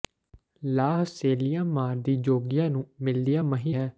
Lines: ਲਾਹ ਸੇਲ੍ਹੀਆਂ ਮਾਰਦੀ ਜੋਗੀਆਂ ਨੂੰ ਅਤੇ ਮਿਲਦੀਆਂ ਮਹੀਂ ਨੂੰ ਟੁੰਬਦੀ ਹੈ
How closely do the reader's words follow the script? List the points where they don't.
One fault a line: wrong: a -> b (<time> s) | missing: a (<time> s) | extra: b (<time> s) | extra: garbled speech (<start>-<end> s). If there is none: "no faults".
missing: ਅਤੇ (2.9 s)
missing: ਨੂੰ ਟੁੰਬਦੀ (3.7 s)